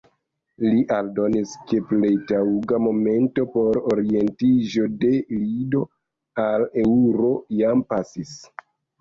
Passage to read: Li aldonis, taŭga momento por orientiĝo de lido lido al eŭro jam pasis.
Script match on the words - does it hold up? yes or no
no